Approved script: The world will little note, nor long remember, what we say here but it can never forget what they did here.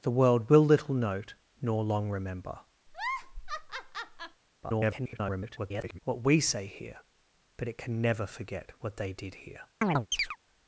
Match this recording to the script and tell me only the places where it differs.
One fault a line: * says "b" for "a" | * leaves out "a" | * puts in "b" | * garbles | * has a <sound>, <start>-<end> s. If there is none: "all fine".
* has a laugh, 2.9-4.4 s
* garbles
* has a chirp, 9.8-10.4 s